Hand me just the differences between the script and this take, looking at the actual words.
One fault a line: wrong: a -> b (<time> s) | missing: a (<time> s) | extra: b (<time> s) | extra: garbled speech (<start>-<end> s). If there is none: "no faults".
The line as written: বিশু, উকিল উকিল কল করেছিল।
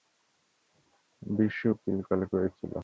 missing: উকিল (2.0 s)